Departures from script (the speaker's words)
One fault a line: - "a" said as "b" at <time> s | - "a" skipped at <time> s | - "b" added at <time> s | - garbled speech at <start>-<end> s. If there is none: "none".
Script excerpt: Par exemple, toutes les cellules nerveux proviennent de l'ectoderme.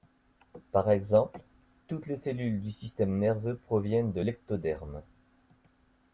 - "du système" added at 2.6 s